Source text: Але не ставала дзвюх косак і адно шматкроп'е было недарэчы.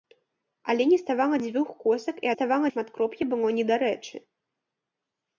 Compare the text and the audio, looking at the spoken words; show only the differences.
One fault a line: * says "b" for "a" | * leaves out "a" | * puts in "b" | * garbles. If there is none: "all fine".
* says "ставала" for "адно"